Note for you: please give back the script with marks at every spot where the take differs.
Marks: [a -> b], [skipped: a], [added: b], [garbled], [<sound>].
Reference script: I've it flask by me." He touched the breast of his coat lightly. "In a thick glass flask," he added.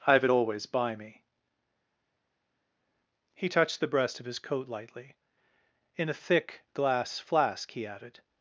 I've it [flask -> always] by me." He touched the breast of his coat lightly. "In a thick glass flask," he added.